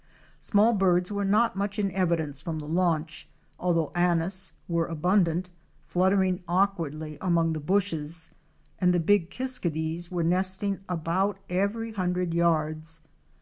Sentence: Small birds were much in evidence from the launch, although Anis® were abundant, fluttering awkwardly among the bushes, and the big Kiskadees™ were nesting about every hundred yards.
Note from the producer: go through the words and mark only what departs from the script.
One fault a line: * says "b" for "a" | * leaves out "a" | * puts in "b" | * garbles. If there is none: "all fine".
* puts in "not"